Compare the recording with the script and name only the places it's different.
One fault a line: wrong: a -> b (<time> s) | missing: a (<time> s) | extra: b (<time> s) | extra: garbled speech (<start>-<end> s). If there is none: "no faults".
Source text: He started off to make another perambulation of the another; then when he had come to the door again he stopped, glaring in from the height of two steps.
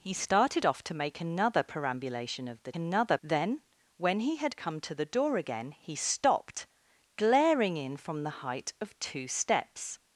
no faults